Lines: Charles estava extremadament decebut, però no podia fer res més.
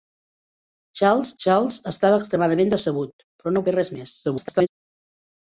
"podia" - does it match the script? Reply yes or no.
no